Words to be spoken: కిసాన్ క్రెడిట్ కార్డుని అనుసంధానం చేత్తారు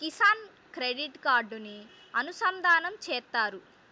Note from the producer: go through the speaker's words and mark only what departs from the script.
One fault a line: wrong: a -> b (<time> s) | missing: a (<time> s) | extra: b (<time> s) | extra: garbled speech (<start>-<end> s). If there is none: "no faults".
no faults